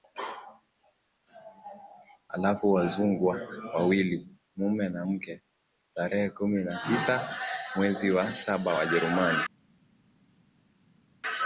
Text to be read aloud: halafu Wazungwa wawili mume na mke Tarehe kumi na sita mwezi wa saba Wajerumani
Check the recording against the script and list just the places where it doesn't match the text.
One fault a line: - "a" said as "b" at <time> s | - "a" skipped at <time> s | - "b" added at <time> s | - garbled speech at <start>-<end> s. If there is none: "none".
none